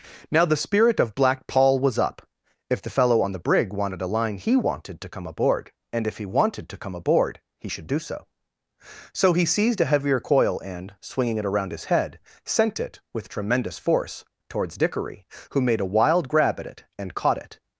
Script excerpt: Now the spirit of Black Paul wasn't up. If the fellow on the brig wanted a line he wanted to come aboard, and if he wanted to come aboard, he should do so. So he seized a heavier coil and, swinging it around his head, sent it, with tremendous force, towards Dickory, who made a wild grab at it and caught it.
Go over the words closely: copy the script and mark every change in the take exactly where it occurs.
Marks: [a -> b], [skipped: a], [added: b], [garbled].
Now the spirit of Black Paul [wasn't -> was] up. If the fellow on the brig wanted a line he wanted to come aboard, and if he wanted to come aboard, he should do so. So he seized a heavier coil and, swinging it around his head, sent it, with tremendous force, towards Dickory, who made a wild grab at it and caught it.